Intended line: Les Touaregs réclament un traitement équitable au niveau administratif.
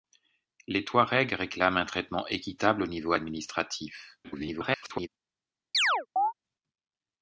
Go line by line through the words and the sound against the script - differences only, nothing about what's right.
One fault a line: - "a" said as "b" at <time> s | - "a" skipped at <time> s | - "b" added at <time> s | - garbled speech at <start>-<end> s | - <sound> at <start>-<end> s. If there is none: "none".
- garbled speech at 4.2-5.1 s
- chirp at 5.7-6.3 s